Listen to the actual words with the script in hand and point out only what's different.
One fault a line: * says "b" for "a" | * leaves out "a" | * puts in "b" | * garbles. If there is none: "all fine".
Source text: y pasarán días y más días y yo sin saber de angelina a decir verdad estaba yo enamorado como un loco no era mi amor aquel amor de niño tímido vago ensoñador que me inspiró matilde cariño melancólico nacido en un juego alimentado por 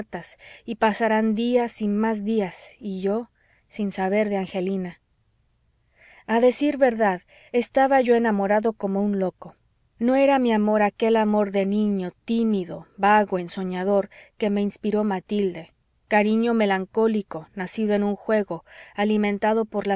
all fine